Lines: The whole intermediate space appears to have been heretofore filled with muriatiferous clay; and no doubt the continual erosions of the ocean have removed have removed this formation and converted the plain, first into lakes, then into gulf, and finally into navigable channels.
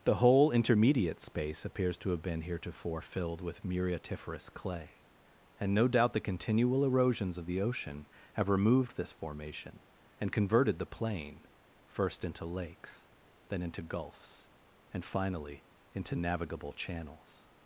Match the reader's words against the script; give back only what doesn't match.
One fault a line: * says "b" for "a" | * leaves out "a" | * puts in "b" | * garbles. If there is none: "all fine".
* leaves out "have removed"
* says "gulfs" for "gulf"